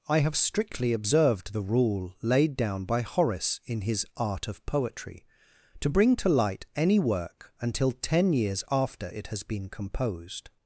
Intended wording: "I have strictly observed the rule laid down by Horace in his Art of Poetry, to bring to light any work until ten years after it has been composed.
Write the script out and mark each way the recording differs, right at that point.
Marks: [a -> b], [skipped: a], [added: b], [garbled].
"I have strictly observed the rule laid down by Horace in his Art of Poetry, to bring to light any work until ten years after it has been composed.